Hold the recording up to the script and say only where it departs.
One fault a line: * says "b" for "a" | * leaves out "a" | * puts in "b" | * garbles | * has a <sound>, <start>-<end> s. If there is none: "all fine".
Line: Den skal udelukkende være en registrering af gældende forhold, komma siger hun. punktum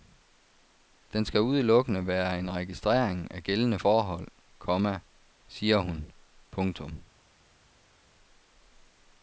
all fine